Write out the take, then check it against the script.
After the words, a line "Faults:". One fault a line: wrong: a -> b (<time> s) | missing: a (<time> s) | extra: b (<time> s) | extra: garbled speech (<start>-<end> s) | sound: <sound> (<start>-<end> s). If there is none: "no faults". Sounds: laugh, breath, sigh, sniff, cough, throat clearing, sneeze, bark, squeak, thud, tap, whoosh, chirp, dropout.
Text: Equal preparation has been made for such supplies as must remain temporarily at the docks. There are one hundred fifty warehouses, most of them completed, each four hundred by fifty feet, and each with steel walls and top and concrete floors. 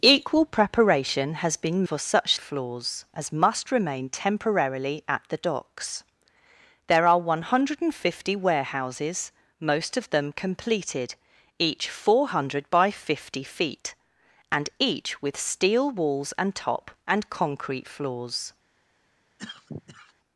Equal preparation has been for such floors as must remain temporarily at the docks. There are one hundred fifty warehouses, most of them completed, each four hundred by fifty feet, and each with steel walls and top and concrete floors.
Faults:
missing: made (1.9 s)
wrong: supplies -> floors (2.4 s)
sound: cough (19.4-20.1 s)